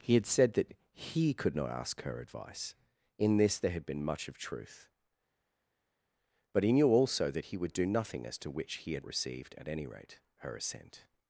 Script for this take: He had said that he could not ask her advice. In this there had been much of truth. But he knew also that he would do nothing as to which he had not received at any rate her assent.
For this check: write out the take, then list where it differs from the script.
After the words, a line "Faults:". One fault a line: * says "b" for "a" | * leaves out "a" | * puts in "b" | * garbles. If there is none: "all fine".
He had said that he could not ask her advice. In this there had been much of truth. But he knew also that he would do nothing as to which he had received at any rate her assent.
Faults:
* leaves out "not"